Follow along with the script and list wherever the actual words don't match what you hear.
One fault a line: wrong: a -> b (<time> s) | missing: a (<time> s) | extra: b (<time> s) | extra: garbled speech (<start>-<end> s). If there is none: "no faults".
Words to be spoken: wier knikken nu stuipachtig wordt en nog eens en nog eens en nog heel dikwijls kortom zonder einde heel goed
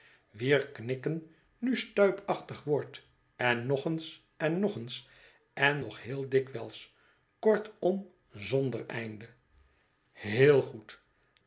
no faults